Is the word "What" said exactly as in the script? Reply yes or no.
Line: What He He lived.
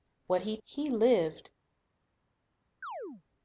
yes